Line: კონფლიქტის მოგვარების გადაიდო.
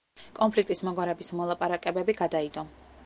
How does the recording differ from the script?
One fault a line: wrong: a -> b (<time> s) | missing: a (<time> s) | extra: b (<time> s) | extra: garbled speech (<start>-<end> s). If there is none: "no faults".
extra: მოლაპარაკებები (1.4 s)